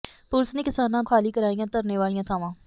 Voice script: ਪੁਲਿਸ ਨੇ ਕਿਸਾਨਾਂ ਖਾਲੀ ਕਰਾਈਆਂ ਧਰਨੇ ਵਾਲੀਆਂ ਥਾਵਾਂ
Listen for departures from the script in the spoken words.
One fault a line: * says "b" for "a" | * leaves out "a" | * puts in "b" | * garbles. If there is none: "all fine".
all fine